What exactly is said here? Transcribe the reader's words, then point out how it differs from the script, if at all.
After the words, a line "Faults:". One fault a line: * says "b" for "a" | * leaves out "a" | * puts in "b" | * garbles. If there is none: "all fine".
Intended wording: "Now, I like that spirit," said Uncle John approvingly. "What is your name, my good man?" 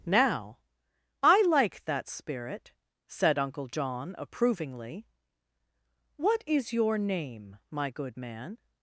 "Now, I like that spirit," said Uncle John approvingly. "What is your name, my good man?"
Faults:
all fine